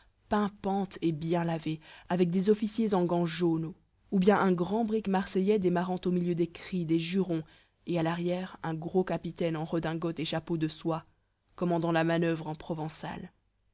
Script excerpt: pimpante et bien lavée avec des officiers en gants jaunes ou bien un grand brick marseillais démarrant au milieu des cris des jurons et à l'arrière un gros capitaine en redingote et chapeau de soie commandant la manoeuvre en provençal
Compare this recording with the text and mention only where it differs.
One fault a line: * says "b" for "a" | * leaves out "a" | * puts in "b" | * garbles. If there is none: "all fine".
all fine